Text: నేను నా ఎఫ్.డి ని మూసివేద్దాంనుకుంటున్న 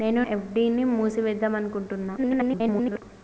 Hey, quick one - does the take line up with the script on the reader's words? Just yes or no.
no